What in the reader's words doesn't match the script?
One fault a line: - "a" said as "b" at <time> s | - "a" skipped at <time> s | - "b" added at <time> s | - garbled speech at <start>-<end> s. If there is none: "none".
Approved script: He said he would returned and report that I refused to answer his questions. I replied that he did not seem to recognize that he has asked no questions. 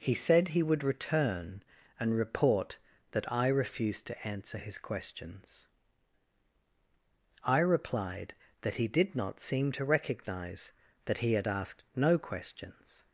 - "returned" said as "return" at 0.8 s
- "has" said as "had" at 11.3 s